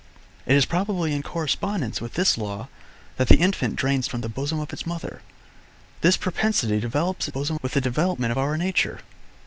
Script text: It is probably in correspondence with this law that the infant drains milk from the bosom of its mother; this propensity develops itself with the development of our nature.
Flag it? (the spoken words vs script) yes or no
yes